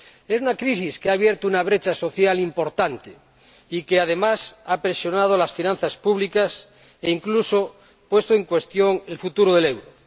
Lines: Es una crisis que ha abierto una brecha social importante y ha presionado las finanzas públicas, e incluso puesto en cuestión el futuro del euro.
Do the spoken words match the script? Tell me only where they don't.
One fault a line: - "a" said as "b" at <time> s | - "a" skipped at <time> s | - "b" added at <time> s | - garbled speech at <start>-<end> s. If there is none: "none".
- "que además" added at 3.8 s